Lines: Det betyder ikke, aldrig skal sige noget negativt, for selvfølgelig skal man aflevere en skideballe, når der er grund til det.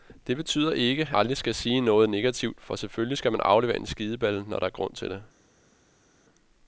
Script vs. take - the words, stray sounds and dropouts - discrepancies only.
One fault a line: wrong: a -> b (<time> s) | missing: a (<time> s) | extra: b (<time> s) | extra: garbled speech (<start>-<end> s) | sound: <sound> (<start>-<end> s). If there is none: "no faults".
no faults